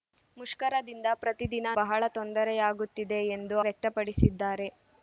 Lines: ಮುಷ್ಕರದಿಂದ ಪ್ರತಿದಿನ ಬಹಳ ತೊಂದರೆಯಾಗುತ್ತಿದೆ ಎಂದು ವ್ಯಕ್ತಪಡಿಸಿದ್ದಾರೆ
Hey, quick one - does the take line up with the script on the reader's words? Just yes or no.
yes